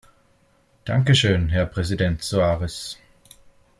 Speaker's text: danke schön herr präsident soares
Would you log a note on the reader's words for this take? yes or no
no